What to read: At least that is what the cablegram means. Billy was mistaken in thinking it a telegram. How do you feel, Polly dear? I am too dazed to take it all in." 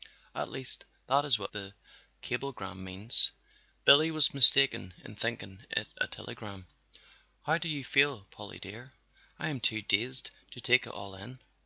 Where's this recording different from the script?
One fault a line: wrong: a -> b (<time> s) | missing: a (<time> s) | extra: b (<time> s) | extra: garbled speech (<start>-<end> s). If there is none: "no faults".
no faults